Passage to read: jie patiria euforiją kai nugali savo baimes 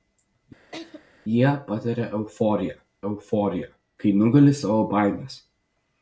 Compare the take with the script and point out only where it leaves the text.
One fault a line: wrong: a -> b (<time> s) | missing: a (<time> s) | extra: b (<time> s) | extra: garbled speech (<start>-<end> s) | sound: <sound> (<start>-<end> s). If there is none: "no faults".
sound: laugh (0.7-1.0 s)
extra: euforiją (3.1 s)